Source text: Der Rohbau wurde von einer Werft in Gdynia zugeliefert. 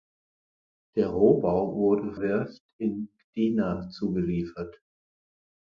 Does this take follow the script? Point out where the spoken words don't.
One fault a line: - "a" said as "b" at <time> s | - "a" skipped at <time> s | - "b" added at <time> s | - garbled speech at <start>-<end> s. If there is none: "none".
- "von einer" skipped at 2.1 s